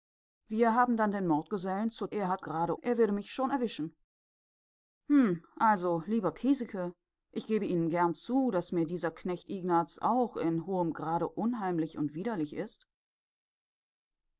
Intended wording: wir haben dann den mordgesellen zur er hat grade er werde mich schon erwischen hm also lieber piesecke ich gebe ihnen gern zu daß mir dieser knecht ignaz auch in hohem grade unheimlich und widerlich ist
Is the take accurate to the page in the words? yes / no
yes